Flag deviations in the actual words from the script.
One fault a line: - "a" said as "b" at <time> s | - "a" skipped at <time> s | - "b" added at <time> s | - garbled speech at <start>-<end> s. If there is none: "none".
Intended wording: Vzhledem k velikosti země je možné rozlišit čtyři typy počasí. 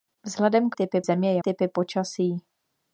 - "velikosti" said as "typy" at 0.7 s
- "možné rozlišit čtyři" skipped at 1.4 s